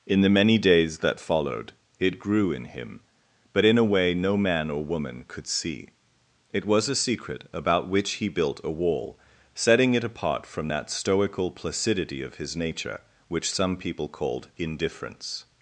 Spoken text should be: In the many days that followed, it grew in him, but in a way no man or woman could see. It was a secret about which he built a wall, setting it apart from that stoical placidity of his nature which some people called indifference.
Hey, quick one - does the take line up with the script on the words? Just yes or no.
yes